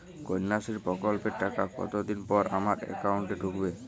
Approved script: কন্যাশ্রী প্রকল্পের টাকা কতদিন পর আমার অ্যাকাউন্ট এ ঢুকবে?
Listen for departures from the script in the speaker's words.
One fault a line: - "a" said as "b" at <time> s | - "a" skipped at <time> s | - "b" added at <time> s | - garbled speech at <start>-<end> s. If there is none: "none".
none